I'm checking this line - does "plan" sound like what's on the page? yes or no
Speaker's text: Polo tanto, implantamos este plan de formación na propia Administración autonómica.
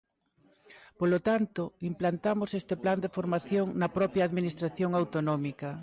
yes